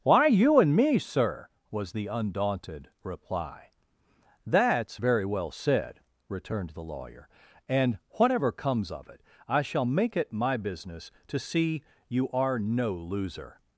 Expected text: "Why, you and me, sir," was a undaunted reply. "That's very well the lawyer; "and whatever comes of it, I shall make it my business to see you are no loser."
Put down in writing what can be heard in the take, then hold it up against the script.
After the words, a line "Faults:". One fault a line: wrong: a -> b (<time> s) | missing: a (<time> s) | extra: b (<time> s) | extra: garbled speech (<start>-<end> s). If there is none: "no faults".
"Why, you and me, sir," was the undaunted reply. "That's very well said," returned the lawyer; "and whatever comes of it, I shall make it my business to see you are no loser."
Faults:
wrong: a -> the (1.9 s)
extra: said returned (5.5 s)